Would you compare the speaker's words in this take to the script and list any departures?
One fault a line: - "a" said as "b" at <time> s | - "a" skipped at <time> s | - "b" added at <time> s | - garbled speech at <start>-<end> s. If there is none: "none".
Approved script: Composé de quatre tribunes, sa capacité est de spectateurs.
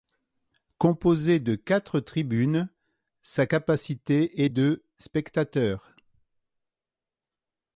none